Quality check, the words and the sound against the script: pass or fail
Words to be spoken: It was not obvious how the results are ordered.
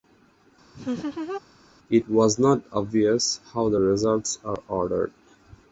fail